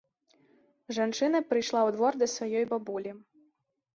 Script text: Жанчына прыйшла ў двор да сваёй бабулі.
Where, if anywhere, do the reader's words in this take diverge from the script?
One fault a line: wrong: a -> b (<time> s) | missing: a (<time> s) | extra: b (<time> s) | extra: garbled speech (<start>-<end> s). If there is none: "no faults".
no faults